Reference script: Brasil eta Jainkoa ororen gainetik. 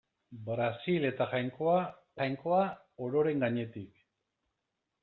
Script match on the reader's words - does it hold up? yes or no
no